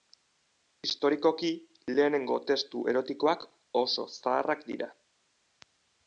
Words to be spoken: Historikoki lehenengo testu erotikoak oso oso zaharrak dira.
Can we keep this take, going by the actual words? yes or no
no